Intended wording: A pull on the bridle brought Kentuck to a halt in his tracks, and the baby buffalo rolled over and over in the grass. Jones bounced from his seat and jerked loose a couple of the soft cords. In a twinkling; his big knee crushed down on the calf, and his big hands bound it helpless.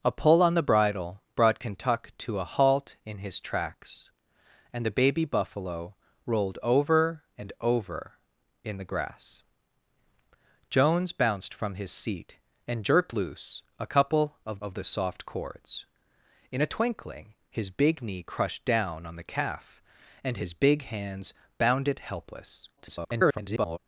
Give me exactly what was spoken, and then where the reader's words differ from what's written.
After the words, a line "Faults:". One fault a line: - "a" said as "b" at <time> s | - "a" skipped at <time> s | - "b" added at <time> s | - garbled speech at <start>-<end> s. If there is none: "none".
A pull on the bridle brought Kentuck to a halt in his tracks, and the baby buffalo rolled over and over in the grass. Jones bounced from his seat and jerked loose a couple of of the soft cords. In a twinkling; his big knee crushed down on the calf, and his big hands bound it helpless. [garbled]
Faults:
- "of" added at 14.6 s
- garbled speech at 22.8-23.8 s